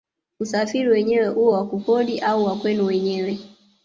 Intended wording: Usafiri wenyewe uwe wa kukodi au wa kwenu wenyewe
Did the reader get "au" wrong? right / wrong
right